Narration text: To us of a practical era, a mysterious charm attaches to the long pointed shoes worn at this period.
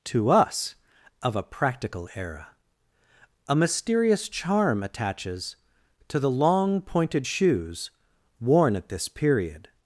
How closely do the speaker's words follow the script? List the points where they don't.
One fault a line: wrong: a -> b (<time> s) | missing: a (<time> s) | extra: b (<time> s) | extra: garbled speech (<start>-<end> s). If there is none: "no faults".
no faults